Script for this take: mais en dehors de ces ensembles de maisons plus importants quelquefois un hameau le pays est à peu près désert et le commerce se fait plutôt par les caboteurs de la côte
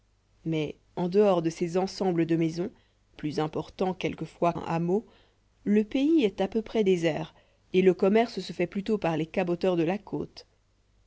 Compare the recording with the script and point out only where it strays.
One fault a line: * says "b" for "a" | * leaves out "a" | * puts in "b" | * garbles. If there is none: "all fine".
all fine